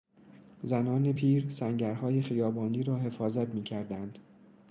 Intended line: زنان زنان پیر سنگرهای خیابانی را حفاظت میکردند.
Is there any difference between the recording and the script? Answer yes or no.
yes